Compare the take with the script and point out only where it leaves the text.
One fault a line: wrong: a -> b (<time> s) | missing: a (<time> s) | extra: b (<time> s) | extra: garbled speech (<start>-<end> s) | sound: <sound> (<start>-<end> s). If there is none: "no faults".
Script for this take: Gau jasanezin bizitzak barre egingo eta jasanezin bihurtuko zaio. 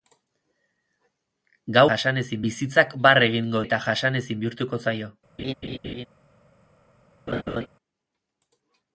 sound: laugh (5.4-6.1 s)
sound: laugh (7.3-7.7 s)